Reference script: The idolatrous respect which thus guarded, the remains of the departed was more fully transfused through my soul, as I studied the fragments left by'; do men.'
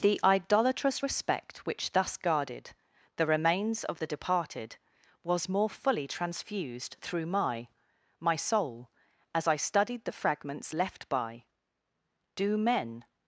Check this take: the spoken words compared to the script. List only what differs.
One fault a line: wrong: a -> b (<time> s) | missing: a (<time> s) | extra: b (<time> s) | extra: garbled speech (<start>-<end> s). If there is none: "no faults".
extra: my (8.2 s)